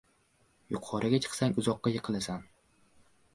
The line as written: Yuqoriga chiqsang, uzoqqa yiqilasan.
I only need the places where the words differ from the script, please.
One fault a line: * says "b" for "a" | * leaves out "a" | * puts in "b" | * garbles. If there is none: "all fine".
all fine